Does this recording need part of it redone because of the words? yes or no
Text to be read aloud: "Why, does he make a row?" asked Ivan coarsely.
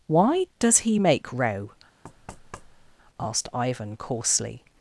yes